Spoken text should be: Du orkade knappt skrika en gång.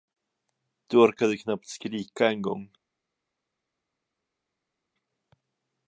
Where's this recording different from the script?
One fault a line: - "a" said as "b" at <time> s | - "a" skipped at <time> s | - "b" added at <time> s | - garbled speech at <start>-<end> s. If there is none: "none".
none